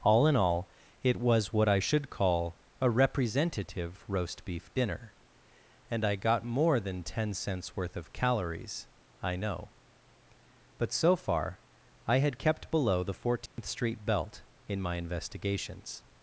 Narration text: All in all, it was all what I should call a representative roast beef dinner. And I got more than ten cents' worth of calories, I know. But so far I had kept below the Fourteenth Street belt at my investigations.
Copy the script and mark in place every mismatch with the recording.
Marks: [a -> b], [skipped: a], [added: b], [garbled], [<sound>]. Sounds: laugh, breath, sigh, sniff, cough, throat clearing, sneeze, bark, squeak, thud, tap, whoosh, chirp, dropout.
All in all, it was [skipped: all] what I should call a representative roast beef dinner. And I got more than ten cents' worth of calories, I know. But so far I had kept below the Fourteenth [dropout] Street belt [at -> in] my investigations.